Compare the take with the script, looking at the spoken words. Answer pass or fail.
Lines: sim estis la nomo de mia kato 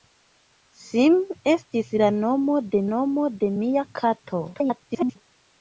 fail